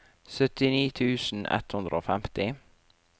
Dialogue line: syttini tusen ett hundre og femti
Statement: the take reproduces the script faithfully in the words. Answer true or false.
true